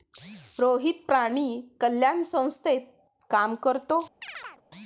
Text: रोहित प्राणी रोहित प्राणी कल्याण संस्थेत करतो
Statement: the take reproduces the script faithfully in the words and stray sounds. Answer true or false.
false